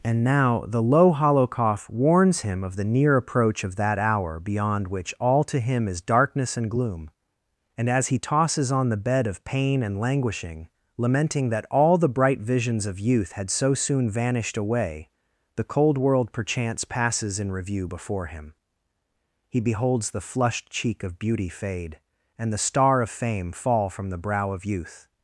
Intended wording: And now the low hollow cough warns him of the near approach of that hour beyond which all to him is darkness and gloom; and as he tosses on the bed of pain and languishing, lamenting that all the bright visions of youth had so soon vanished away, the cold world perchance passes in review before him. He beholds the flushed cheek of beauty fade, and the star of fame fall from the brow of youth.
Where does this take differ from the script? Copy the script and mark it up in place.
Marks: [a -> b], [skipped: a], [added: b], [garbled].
And now the low hollow cough warns him of the near approach of that hour beyond which all to him is darkness and gloom; and as he tosses on the bed of pain and languishing, lamenting that all the bright visions of youth had so soon vanished away, the cold world perchance passes in review before him. He beholds the flushed cheek of beauty fade, and the star of fame fall from the brow of youth.